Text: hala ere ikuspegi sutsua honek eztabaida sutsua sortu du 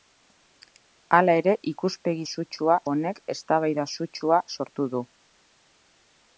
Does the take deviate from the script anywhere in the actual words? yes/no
no